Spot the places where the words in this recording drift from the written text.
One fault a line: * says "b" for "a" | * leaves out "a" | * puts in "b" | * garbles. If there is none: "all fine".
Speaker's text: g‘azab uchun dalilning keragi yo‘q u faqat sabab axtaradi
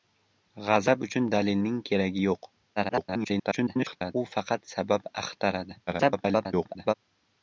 * garbles
* garbles